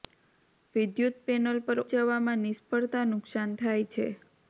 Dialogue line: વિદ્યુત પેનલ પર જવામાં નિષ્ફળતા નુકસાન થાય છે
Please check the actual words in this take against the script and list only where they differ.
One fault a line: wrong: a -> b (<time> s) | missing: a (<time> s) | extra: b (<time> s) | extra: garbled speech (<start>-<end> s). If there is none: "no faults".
no faults